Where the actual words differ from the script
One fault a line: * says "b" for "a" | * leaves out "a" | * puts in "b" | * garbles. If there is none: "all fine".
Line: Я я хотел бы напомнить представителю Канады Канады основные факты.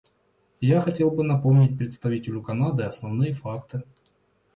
* leaves out "я"
* leaves out "Канады"